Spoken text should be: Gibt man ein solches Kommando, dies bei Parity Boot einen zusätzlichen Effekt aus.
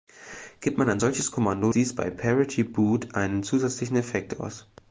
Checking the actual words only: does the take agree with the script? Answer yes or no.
yes